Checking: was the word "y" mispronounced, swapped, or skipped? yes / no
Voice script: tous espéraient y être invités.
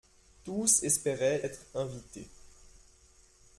yes